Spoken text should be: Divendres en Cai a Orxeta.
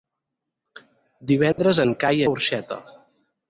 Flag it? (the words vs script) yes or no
no